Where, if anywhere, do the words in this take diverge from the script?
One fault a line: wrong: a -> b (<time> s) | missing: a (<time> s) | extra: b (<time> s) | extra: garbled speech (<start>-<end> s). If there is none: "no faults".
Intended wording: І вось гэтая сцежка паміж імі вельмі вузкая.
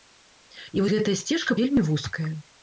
missing: вось (0.8 s)
missing: паміж імі (1.6 s)